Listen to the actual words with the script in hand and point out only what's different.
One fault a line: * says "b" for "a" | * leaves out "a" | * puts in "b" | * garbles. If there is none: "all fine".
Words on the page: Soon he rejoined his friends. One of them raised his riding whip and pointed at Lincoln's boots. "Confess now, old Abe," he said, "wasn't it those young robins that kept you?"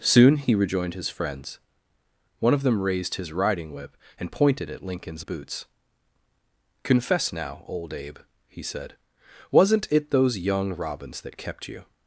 all fine